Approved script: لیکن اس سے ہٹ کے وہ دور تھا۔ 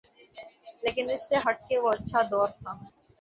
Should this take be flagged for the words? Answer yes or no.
yes